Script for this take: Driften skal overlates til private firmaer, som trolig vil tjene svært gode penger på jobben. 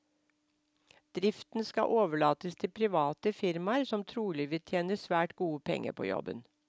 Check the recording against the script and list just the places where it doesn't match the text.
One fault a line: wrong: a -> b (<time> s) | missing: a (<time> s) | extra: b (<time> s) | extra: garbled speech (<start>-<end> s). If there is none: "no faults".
no faults